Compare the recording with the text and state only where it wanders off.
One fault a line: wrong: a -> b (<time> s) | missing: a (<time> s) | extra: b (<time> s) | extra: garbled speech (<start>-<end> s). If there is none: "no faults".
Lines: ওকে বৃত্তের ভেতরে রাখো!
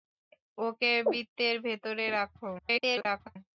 extra: garbled speech (2.6-3.4 s)